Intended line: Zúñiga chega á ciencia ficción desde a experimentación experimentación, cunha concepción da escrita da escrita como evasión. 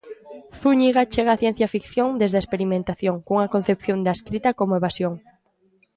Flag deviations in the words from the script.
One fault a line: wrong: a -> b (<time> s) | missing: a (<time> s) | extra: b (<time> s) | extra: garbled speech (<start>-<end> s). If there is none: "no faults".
missing: experimentación (3.2 s)
missing: da escrita (4.5 s)